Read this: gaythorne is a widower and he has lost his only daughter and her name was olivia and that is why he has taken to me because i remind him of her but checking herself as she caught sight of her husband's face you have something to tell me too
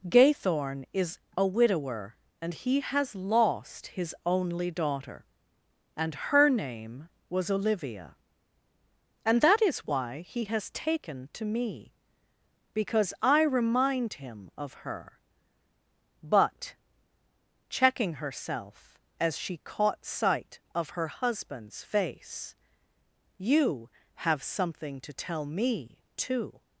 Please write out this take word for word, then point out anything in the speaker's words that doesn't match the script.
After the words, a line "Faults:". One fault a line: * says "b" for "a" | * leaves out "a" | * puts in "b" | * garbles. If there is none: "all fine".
gaythorne is a widower and he has lost his only daughter and her name was olivia and that is why he has taken to me because i remind him of her but checking herself as she caught sight of her husband's face you have something to tell me too
Faults:
all fine